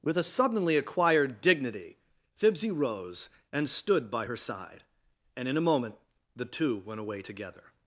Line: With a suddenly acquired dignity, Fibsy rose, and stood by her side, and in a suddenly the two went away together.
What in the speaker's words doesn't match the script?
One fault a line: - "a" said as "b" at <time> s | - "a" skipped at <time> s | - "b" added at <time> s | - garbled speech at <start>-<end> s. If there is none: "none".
- "suddenly" said as "moment" at 5.6 s